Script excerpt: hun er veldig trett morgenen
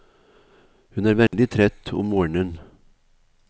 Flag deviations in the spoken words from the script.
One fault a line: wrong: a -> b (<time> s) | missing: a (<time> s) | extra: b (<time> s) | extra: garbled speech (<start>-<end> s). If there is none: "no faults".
extra: om (1.9 s)